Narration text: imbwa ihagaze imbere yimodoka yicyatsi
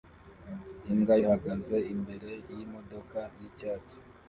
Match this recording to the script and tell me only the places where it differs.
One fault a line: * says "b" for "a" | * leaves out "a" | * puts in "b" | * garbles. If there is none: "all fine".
all fine